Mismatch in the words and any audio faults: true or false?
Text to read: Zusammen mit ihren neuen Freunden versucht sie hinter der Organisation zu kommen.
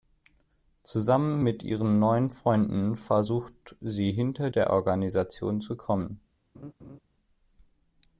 true